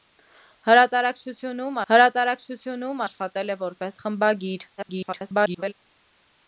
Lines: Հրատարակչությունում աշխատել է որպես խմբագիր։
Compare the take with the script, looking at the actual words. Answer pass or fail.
fail